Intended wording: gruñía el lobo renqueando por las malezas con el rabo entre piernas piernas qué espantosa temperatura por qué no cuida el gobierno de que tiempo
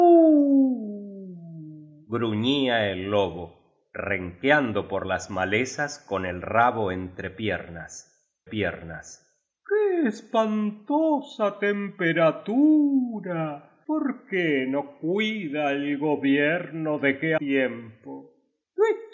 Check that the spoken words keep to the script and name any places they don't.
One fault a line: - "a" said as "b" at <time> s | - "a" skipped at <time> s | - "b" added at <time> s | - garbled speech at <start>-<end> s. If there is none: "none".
none